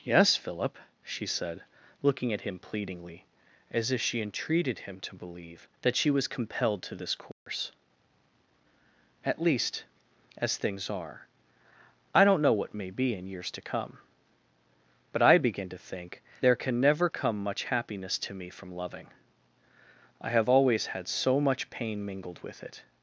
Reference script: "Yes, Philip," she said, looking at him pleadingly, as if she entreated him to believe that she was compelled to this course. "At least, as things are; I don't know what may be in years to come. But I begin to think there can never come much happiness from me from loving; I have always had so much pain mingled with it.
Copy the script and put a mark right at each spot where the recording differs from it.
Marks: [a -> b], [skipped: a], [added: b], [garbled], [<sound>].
"Yes, Philip," she said, looking at him pleadingly, as if she entreated him to believe that she was compelled to this course. [dropout] "At least, as things are; I don't know what may be in years to come. But I begin to think there can never come much happiness [from -> to] me from loving; I have always had so much pain mingled with it.